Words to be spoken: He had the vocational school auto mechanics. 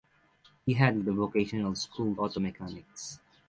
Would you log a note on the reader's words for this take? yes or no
no